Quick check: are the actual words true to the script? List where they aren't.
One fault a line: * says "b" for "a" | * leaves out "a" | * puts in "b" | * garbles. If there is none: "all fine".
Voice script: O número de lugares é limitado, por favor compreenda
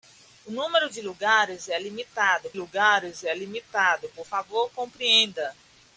* puts in "lugares é limitado"